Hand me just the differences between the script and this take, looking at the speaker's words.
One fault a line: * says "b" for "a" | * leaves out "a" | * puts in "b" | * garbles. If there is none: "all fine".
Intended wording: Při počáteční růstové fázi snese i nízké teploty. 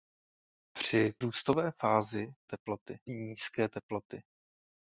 * leaves out "počáteční"
* says "teploty" for "snese"